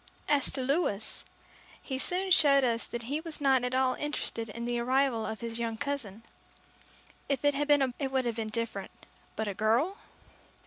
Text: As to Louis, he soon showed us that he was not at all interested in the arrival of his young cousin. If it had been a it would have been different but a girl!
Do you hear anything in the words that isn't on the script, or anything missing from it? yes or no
no